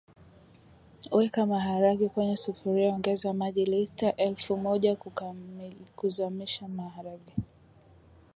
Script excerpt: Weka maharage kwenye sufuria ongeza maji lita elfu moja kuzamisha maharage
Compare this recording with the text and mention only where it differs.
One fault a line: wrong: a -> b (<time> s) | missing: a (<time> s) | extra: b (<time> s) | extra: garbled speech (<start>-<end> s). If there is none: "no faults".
no faults